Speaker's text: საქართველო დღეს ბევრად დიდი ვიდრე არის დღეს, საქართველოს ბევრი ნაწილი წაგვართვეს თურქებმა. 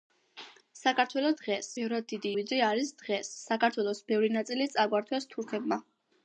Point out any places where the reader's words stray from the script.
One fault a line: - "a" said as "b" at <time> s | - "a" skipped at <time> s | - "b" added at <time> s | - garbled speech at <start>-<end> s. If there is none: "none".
none